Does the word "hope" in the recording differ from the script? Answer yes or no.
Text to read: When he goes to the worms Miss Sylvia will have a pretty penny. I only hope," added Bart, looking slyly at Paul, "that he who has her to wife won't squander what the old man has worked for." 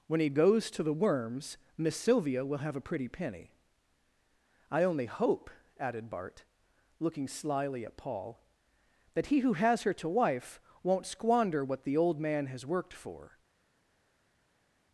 no